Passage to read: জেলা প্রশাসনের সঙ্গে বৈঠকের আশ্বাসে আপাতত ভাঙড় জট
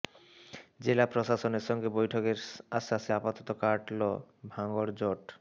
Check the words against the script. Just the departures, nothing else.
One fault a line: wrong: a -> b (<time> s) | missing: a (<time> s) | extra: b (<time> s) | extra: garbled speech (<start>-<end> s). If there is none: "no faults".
extra: কাটল (3.6 s)